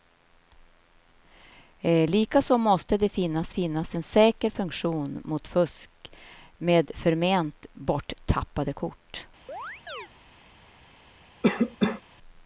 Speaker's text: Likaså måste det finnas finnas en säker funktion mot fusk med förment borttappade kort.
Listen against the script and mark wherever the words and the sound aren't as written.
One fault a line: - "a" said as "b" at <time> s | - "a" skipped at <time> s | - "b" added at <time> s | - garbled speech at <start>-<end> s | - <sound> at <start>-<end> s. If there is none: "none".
- chirp at 9.5-10.1 s
- cough at 11.4-12.0 s